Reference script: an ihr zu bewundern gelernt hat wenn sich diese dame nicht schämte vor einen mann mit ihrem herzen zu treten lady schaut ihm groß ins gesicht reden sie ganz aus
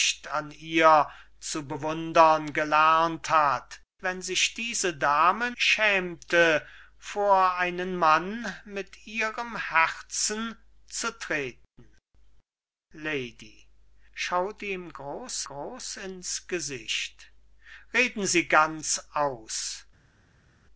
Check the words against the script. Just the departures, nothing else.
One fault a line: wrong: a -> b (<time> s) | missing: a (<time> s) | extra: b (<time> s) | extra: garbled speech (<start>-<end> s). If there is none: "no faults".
missing: nicht (5.5 s)
extra: groß (15.4 s)